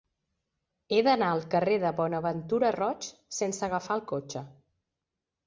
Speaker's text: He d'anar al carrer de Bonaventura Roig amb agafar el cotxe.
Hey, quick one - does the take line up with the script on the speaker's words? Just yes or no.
no